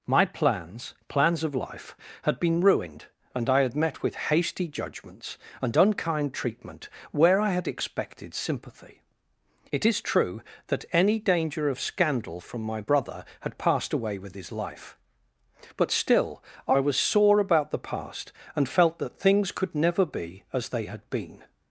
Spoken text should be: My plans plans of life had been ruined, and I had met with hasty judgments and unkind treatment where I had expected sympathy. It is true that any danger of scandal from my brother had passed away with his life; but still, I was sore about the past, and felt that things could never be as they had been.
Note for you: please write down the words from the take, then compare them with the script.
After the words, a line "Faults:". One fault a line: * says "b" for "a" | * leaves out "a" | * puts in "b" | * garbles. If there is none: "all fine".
My plans plans of life had been ruined, and I had met with hasty judgments and unkind treatment where I had expected sympathy. It is true that any danger of scandal from my brother had passed away with his life; but still, I was sore about the past, and felt that things could never be as they had been.
Faults:
all fine